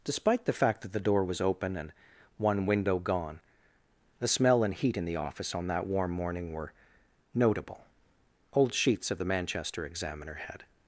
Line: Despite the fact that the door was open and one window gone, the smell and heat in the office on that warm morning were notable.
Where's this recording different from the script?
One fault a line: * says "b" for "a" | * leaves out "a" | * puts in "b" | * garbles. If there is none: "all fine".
* puts in "Old sheets of the Manchester Examiner had"